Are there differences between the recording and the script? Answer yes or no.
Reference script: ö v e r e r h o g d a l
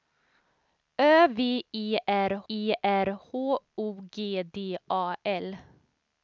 no